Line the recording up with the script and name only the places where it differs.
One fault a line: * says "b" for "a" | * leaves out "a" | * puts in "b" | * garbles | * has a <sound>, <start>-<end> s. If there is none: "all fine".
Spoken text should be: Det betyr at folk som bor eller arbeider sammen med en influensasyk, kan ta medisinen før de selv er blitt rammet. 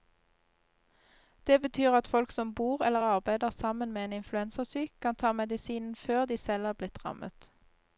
all fine